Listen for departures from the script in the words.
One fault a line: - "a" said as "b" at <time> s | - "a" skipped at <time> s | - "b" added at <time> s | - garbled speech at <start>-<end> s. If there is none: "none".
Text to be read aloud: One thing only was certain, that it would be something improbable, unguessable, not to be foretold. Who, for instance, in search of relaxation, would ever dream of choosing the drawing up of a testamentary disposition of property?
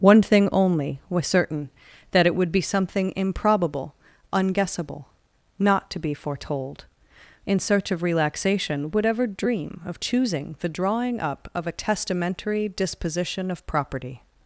- "Who for instance" skipped at 6.8 s